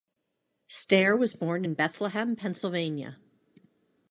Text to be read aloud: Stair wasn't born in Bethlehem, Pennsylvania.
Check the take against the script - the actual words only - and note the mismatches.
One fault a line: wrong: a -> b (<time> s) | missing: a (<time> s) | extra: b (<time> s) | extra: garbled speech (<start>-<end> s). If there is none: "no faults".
wrong: wasn't -> was (1.1 s)